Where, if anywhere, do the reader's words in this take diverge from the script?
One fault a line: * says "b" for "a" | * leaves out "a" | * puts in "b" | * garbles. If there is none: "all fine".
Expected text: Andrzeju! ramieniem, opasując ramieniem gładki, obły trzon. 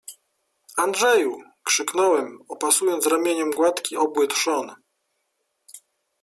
* says "krzyknąłem" for "ramieniem"